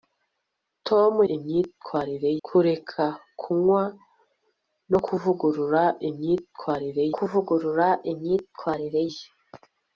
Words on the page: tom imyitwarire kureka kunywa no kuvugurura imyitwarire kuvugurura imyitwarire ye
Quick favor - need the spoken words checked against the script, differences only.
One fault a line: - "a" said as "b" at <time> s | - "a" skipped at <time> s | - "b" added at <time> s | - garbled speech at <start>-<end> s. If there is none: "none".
none